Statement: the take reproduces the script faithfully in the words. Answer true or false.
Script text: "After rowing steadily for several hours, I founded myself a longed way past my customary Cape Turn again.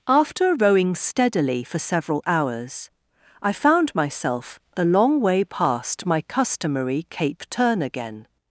false